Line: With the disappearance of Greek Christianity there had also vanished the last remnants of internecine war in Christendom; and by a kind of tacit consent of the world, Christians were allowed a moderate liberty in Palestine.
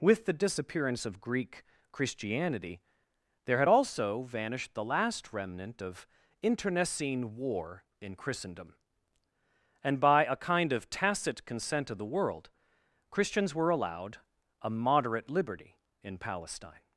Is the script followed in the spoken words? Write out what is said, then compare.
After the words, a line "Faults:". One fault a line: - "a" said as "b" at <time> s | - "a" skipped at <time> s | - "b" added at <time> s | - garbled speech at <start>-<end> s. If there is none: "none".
With the disappearance of Greek Christianity there had also vanished the last remnant of internecine war in Christendom; and by a kind of tacit consent of the world, Christians were allowed a moderate liberty in Palestine.
Faults:
- "remnants" said as "remnant" at 5.3 s